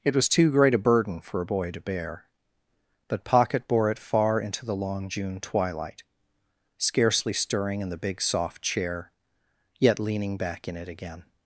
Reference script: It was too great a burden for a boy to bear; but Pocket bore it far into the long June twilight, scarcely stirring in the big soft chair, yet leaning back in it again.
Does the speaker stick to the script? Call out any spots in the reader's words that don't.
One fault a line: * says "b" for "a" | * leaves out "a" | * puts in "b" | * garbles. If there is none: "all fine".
all fine